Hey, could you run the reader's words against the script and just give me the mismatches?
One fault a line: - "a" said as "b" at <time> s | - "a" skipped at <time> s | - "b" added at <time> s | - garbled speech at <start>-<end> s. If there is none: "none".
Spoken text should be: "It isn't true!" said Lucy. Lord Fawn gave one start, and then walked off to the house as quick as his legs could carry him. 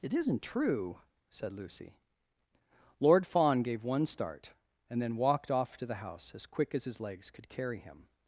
none